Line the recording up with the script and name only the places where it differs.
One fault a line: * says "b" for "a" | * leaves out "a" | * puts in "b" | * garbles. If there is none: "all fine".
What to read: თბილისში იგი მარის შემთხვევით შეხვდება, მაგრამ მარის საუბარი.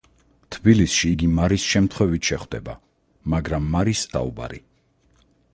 all fine